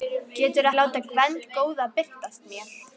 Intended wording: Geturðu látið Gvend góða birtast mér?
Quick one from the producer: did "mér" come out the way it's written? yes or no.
yes